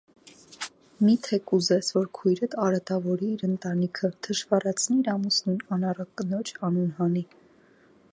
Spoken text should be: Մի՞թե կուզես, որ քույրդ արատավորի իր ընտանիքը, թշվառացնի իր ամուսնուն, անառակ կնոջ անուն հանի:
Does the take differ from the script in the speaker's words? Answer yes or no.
no